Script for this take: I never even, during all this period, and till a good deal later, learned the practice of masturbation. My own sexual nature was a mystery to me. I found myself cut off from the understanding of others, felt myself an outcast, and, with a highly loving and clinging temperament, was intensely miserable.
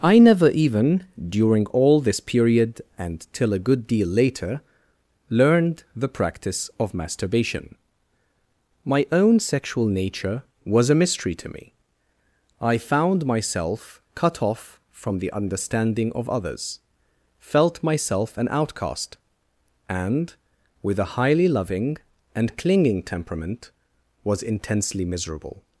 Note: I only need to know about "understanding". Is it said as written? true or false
true